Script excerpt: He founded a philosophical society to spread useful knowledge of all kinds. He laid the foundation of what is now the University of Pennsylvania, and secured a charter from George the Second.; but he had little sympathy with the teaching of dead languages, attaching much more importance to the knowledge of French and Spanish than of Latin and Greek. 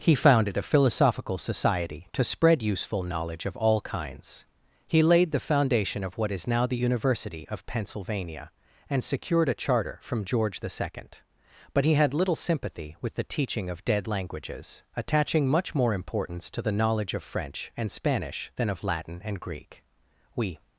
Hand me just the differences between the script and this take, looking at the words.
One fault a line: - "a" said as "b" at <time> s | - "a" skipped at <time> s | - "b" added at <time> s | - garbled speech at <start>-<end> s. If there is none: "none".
- "We" added at 20.3 s